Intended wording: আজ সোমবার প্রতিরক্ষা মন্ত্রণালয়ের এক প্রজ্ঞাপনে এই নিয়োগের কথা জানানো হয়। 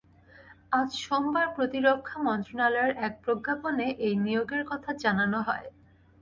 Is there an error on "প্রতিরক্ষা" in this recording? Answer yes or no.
no